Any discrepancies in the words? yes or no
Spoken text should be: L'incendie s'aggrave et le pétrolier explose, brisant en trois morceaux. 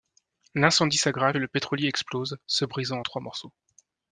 yes